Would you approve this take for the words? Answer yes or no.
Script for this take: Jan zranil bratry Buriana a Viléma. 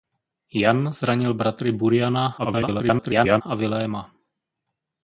no